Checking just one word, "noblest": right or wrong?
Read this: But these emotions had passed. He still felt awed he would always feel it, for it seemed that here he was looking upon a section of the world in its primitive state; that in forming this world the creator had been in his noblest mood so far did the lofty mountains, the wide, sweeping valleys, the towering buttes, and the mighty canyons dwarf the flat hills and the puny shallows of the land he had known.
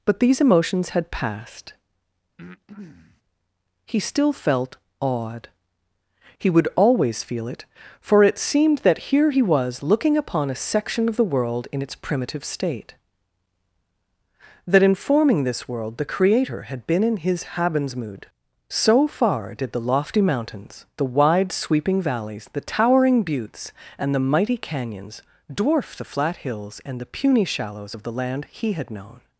wrong